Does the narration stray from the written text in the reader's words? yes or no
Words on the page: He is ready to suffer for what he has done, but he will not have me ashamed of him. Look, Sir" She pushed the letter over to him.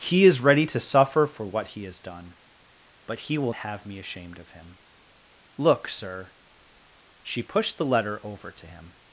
yes